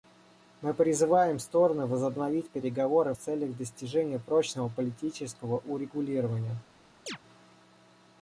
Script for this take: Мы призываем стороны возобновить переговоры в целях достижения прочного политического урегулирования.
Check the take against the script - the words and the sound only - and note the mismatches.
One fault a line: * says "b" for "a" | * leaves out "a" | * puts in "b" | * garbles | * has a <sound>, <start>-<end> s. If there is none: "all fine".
* has a chirp, 7.1-7.2 s